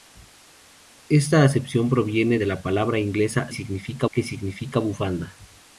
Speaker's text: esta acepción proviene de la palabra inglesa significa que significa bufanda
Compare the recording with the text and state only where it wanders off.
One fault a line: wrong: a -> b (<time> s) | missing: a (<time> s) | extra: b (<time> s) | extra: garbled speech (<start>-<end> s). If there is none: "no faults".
no faults